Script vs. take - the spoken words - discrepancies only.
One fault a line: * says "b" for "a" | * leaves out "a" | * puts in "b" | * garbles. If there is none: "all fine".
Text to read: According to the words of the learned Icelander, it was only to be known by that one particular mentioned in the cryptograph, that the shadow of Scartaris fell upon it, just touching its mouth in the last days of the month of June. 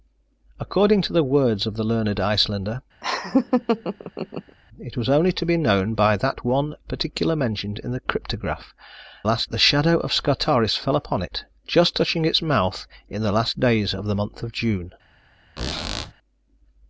* says "last" for "that"